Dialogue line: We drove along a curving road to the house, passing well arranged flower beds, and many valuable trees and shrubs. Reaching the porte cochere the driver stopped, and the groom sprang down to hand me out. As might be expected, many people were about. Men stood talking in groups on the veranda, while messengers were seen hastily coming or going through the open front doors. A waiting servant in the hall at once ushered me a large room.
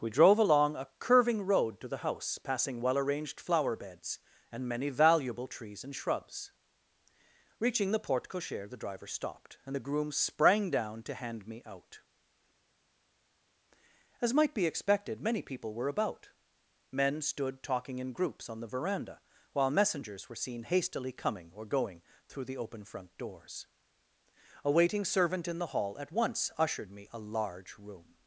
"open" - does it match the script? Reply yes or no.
yes